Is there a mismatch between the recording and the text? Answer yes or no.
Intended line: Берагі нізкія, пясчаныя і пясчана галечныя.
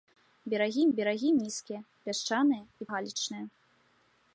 yes